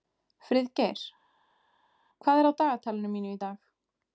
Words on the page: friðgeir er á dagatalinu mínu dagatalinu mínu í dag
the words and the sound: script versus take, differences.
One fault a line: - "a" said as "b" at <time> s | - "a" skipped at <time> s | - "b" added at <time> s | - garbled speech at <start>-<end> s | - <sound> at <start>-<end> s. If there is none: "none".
- "hvað" added at 2.2 s
- "dagatalinu mínu" skipped at 3.3 s